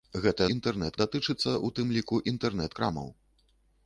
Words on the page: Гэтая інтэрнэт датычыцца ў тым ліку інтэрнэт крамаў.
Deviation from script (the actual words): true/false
false